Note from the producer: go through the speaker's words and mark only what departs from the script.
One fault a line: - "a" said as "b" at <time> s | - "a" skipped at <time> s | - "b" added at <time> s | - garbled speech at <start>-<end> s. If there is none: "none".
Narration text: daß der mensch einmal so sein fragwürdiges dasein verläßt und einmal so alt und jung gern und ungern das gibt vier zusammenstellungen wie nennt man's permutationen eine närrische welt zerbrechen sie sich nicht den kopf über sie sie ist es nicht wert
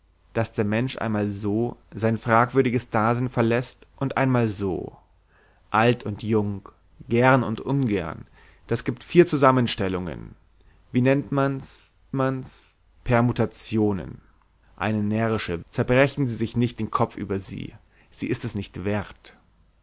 - "man's" added at 12.1 s
- "welt" skipped at 15.6 s